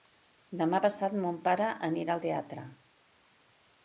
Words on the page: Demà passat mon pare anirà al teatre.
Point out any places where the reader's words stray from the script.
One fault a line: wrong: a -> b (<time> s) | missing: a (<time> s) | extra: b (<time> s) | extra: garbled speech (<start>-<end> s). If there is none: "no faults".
no faults